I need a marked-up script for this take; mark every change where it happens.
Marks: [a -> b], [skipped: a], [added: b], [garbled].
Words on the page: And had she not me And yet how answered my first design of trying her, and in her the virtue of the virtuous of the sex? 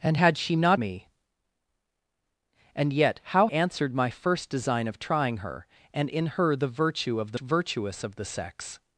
And had she not me And yet how answered my first design of trying her, and in her the virtue of the virtuous of the sex?